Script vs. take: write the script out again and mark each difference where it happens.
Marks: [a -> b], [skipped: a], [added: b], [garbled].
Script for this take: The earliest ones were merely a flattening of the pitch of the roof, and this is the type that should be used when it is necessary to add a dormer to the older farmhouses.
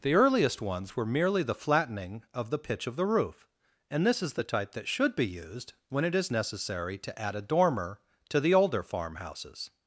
The earliest ones were merely [a -> the] flattening of the pitch of the roof, and this is the type that should be used when it is necessary to add a dormer to the older farmhouses.